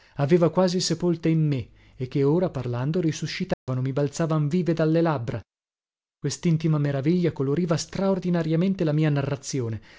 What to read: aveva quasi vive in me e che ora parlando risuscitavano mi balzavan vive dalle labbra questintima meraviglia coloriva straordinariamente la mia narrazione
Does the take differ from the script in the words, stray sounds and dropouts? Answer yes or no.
yes